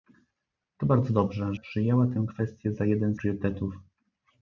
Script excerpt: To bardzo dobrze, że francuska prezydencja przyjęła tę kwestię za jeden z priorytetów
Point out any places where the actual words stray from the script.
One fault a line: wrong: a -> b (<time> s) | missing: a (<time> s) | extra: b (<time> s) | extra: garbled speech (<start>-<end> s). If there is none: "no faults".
missing: że francuska prezydencja (1.5 s)
missing: z (3.1 s)